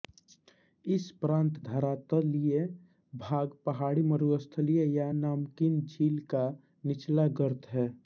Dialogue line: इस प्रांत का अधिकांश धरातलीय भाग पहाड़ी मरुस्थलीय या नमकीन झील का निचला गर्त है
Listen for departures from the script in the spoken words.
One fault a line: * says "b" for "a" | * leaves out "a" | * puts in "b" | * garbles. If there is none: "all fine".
* leaves out "का अधिकांश"